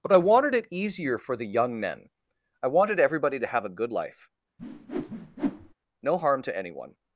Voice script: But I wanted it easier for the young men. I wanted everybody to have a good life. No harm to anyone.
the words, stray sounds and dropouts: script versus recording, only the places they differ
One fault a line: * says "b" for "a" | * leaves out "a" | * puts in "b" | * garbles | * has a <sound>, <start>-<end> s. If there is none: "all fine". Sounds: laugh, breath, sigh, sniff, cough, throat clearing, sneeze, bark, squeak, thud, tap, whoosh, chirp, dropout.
* has a whoosh, 4.6-5.7 s